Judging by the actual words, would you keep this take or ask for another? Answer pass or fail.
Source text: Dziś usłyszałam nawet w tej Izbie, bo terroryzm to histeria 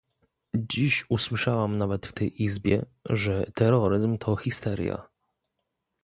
fail